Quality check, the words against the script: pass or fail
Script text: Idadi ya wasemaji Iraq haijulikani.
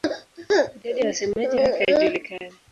pass